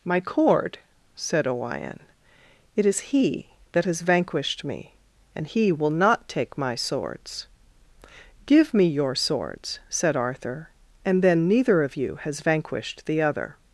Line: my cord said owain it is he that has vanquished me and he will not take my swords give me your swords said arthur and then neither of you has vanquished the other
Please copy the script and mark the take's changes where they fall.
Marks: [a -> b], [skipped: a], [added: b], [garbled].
my cord said owain it is he that has vanquished me and he will not take my swords give me your swords said arthur and then neither of you has vanquished the other